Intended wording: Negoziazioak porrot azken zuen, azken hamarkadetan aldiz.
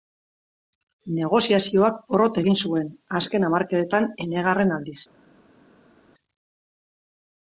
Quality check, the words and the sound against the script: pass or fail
fail